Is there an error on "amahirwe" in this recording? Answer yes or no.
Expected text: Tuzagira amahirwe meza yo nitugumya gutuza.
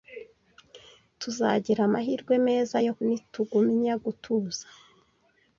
no